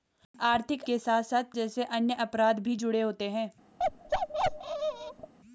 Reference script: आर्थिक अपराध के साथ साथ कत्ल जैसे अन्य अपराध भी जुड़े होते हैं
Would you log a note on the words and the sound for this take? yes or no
yes